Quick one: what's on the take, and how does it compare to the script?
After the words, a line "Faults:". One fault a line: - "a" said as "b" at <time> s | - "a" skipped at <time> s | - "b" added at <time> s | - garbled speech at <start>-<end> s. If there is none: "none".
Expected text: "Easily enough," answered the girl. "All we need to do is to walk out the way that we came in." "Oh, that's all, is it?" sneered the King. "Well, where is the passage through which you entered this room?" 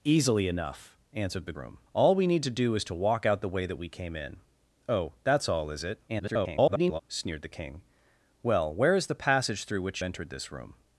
"Easily enough," answered the room. "All we need to do is to walk out the way that we came in." "Oh, that's all, is it?" [garbled] sneered the King. "Well, where is the passage through which entered this room?"
Faults:
- "girl" said as "room" at 1.5 s
- garbled speech at 6.1-7.0 s
- "you" skipped at 10.0 s